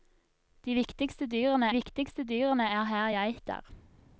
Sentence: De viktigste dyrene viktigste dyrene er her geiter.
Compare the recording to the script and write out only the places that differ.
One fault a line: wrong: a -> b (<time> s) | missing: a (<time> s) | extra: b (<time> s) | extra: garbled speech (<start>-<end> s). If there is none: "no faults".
no faults